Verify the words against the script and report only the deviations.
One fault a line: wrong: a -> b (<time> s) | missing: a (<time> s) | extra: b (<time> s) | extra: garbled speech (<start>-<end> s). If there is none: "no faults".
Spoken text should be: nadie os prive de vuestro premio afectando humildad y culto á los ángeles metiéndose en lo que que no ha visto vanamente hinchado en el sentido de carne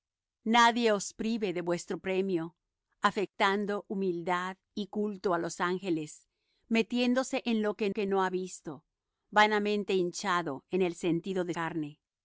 no faults